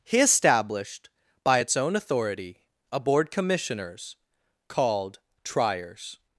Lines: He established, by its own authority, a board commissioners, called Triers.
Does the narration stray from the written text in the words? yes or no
no